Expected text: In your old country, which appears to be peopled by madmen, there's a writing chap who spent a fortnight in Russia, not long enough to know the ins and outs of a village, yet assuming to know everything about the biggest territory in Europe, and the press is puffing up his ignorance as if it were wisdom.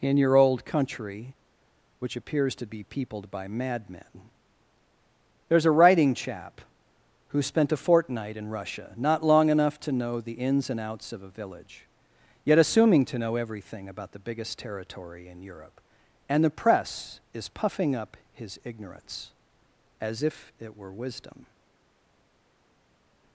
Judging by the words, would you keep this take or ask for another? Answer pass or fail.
pass